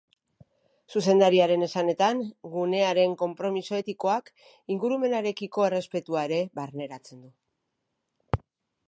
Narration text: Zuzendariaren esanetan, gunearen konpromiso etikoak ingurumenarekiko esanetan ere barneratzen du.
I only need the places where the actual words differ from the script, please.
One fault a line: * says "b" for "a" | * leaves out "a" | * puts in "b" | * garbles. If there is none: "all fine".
* says "errespetua" for "esanetan"